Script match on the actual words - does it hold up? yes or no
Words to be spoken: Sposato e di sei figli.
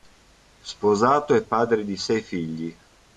no